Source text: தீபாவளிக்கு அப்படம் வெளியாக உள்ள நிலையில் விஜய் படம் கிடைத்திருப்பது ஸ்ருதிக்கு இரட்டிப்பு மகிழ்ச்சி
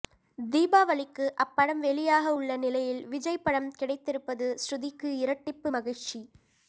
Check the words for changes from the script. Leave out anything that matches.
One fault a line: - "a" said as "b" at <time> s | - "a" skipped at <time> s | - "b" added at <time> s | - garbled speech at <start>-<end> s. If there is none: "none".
none